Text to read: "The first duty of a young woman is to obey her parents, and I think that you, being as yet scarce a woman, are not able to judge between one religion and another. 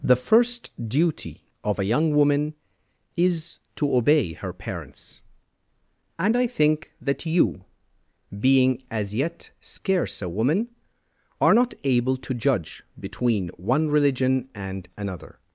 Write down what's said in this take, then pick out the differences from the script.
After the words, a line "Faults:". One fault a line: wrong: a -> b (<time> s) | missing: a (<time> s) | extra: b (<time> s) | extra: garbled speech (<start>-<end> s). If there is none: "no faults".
"The first duty of a young woman is to obey her parents, and I think that you, being as yet scarce a woman, are not able to judge between one religion and another.
Faults:
no faults